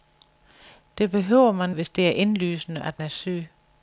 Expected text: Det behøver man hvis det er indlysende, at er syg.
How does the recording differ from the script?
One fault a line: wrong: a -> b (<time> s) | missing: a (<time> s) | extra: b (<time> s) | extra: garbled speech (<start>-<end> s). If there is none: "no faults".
no faults